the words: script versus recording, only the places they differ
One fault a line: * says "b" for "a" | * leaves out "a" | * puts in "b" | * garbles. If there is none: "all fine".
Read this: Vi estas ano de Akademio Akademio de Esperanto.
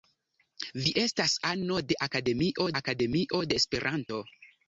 all fine